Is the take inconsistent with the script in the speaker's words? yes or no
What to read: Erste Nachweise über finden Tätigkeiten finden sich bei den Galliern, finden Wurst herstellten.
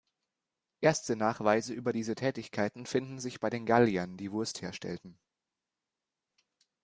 yes